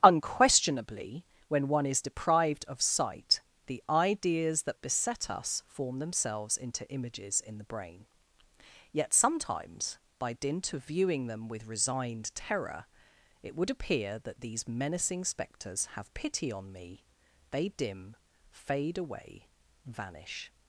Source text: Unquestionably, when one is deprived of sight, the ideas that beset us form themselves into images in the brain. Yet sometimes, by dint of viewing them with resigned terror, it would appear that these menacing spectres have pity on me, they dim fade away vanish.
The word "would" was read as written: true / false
true